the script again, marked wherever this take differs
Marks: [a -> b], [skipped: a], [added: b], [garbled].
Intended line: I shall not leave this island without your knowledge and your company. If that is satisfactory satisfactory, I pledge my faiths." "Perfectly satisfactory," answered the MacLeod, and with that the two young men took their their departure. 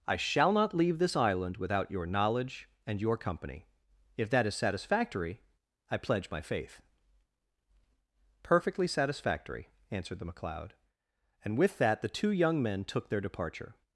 I shall not leave this island without your knowledge and your company. If that is satisfactory [skipped: satisfactory,] I pledge my [faiths." -> faith] "Perfectly satisfactory," answered the MacLeod, and with that the two young men took their [skipped: their] departure.